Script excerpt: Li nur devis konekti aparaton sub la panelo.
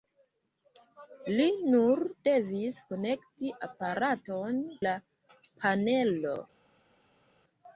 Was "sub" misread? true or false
true